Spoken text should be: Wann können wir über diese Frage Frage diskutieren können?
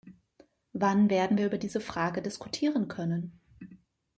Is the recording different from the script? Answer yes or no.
yes